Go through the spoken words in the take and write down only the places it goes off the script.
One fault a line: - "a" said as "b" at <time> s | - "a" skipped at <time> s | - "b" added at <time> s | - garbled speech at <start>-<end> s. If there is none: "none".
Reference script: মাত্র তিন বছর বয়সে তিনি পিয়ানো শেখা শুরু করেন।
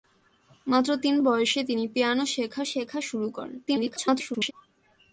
- "বছর" skipped at 1.1 s
- "শেখা" added at 2.6 s
- garbled speech at 3.7-4.5 s